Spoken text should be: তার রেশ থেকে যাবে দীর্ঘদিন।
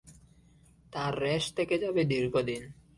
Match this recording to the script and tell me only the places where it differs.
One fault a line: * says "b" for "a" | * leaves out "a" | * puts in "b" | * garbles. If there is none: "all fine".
all fine